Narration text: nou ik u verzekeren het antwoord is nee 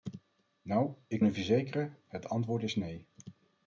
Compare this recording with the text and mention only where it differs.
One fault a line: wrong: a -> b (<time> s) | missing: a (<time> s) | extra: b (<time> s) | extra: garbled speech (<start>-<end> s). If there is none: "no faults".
no faults